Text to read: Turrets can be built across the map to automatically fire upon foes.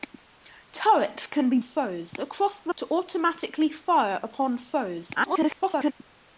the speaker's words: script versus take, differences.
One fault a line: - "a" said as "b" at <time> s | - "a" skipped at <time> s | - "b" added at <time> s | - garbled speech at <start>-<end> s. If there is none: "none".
- "built" said as "foes" at 1.6 s
- "map" skipped at 2.7 s
- garbled speech at 5.1-5.9 s